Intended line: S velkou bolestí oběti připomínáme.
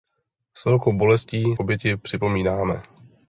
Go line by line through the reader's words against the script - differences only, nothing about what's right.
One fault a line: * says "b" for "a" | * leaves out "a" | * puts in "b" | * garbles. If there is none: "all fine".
all fine